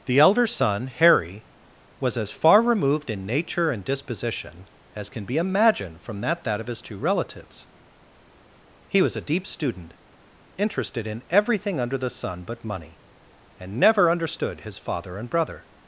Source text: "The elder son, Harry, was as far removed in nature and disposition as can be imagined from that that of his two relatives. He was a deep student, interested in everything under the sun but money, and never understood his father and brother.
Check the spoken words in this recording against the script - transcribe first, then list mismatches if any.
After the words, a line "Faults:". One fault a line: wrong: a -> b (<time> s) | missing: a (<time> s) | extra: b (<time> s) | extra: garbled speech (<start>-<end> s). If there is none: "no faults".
"The elder son, Harry, was as far removed in nature and disposition as can be imagined from that that of his two relatives. He was a deep student, interested in everything under the sun but money, and never understood his father and brother.
Faults:
no faults